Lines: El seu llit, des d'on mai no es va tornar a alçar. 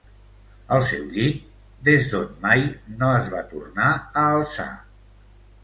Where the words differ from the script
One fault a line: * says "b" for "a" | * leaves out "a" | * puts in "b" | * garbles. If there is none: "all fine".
all fine